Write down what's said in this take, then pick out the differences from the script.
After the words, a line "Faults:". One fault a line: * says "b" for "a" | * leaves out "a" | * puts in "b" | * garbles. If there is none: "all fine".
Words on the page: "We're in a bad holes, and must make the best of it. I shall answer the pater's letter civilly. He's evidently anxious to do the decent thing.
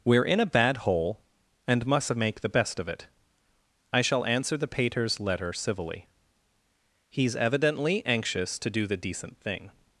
"We're in a bad hole, and must make the best of it. I shall answer the pater's letter civilly. He's evidently anxious to do the decent thing.
Faults:
* says "hole" for "holes"